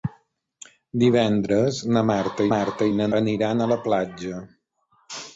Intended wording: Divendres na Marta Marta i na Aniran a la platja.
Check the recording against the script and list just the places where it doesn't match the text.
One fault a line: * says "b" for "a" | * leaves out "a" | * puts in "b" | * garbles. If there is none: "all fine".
all fine